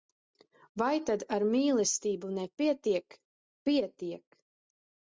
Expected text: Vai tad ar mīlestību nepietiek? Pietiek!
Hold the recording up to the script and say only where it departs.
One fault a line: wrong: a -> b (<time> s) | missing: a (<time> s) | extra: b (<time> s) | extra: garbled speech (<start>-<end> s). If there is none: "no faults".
no faults